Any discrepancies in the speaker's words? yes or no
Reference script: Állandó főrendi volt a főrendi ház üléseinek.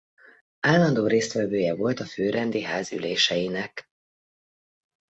yes